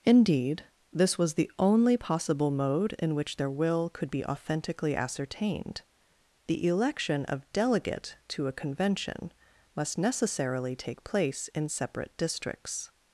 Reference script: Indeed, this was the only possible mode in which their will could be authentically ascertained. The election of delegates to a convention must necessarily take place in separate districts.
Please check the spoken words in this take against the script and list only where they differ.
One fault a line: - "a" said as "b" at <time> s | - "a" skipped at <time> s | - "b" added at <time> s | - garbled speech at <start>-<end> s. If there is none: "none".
- "delegates" said as "delegate" at 7.5 s